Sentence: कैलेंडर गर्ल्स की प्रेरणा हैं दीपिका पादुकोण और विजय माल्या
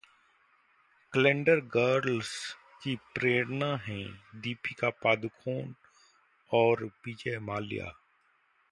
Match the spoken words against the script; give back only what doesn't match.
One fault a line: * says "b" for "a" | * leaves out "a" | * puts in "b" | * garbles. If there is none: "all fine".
all fine